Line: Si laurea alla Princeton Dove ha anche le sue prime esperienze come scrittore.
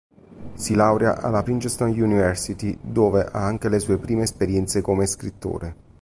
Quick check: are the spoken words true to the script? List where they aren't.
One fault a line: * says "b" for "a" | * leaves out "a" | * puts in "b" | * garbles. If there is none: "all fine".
* puts in "University"